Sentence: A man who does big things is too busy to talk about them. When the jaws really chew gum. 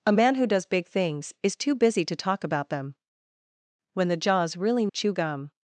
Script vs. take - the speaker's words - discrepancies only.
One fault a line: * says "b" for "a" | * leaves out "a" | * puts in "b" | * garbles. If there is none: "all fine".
all fine